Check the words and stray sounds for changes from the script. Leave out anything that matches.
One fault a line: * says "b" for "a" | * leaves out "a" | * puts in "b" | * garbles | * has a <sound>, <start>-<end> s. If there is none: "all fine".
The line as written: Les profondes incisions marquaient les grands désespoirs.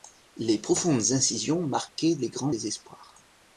all fine